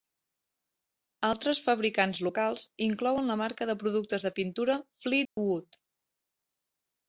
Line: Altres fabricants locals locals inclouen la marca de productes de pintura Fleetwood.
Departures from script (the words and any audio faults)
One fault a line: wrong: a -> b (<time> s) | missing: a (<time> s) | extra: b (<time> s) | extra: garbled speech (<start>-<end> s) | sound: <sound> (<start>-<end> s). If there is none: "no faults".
missing: locals (2.6 s)
sound: dropout (5.3-5.4 s)